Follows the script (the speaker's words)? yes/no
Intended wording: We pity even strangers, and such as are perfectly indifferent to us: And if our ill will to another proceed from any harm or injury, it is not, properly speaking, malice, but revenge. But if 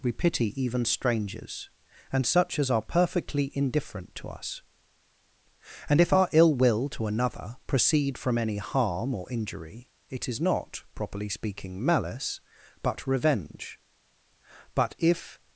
yes